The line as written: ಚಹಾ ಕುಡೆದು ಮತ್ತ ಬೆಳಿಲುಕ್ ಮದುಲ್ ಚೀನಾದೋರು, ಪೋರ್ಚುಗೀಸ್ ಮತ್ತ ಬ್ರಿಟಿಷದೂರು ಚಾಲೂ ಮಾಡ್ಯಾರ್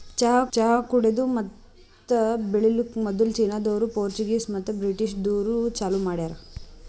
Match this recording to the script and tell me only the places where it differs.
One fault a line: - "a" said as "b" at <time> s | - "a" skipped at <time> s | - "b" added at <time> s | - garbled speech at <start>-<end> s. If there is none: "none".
- "ಚಹಾ" added at 0.5 s